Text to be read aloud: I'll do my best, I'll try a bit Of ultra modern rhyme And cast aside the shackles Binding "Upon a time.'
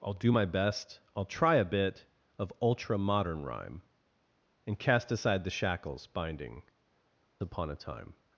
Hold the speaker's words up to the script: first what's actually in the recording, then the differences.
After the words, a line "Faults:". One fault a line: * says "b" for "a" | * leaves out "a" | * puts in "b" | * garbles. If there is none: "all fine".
I'll do my best, I'll try a bit Of ultra modern rhyme And cast aside the shackles Binding "Upon a time.'
Faults:
all fine